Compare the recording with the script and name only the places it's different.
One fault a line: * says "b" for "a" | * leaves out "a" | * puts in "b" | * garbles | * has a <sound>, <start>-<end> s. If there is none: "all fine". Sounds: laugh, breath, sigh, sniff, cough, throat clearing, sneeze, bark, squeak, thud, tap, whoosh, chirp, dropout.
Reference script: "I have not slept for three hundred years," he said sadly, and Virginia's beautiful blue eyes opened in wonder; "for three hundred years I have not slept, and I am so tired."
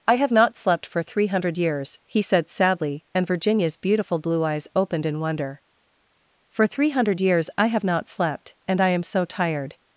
all fine